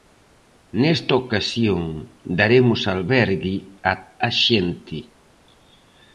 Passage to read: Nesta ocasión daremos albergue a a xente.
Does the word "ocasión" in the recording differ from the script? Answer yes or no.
no